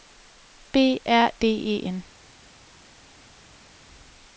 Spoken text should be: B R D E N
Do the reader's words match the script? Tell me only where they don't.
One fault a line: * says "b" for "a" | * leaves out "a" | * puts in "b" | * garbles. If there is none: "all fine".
all fine